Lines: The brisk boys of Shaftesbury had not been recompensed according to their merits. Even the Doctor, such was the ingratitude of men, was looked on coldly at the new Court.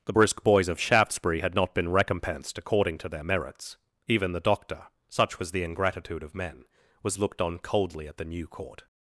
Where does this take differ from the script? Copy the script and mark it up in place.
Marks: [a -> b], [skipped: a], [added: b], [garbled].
The brisk boys of Shaftesbury had not been recompensed according to their merits. Even the Doctor, such was the ingratitude of men, was looked on coldly at the new Court.